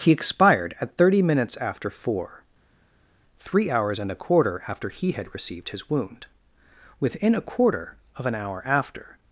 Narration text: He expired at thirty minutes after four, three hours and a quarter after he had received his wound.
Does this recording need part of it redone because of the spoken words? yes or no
yes